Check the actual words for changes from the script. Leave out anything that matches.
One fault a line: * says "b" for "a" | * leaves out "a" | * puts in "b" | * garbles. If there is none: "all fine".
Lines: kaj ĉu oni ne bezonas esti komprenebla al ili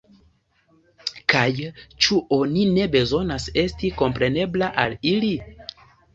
all fine